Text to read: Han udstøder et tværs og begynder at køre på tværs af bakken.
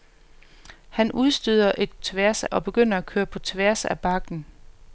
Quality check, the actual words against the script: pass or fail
pass